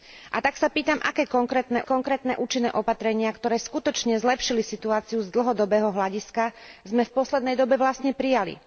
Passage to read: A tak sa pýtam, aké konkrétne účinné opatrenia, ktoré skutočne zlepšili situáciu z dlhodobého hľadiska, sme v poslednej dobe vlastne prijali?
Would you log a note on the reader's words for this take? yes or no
yes